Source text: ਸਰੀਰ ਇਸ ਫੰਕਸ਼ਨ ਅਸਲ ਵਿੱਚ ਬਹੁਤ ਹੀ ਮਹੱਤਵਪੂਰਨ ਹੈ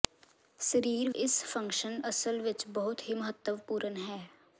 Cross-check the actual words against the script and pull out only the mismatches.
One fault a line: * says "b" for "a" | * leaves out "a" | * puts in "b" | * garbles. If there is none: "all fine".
all fine